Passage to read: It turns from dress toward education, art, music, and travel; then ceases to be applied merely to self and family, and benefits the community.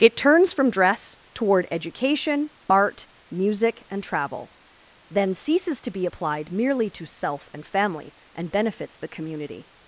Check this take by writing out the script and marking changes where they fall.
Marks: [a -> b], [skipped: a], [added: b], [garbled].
It turns from dress toward education, art, music, and travel; then ceases to be applied merely to self and family, and benefits the community.